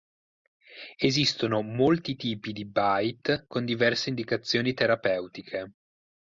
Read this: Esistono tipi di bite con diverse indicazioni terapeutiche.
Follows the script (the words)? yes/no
no